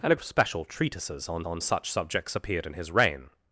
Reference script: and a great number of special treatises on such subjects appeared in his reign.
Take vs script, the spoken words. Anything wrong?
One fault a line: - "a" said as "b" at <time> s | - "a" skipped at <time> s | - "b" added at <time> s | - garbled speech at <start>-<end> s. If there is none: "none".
- "great number" skipped at 0.1 s
- "on" added at 1.4 s